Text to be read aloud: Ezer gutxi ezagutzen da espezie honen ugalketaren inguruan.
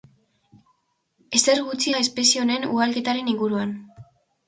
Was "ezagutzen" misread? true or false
true